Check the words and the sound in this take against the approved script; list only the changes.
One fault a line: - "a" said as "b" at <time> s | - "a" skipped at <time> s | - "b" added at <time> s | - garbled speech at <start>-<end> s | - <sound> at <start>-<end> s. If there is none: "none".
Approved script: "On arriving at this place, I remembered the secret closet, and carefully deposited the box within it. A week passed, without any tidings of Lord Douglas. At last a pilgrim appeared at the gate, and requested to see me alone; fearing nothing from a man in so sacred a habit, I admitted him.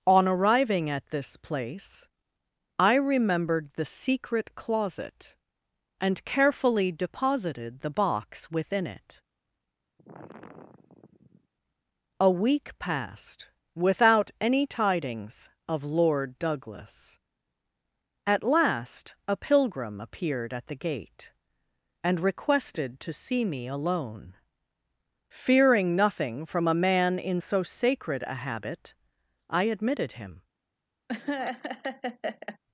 - sigh at 10.0-11.5 s
- laugh at 31.1-32.6 s